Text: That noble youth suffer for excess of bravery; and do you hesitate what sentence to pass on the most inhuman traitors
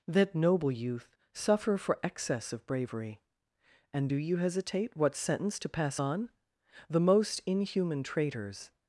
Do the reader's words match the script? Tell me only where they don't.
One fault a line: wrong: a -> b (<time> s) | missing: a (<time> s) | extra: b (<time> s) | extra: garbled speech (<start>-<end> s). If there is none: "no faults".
no faults